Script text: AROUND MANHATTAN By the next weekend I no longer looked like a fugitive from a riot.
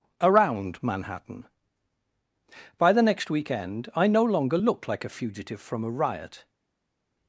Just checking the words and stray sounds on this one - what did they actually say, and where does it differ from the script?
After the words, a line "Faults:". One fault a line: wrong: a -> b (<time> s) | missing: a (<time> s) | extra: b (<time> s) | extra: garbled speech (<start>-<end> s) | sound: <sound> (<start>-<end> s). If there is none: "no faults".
AROUND MANHATTAN By the next weekend I no longer looked like a fugitive from a riot.
Faults:
no faults